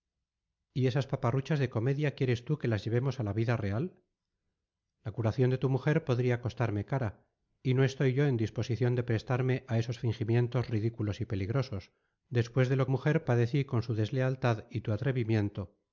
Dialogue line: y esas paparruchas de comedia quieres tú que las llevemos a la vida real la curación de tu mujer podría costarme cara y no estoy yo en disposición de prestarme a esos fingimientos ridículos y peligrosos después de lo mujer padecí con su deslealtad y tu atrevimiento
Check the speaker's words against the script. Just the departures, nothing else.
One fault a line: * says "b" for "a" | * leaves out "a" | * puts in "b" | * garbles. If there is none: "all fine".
all fine